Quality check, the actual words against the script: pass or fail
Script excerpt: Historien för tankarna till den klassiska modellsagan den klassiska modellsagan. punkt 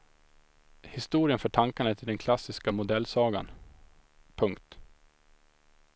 fail